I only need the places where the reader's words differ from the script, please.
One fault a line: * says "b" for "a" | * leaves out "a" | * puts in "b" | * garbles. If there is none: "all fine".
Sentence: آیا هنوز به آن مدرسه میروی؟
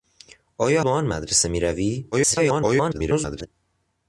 * leaves out "هنوز"
* garbles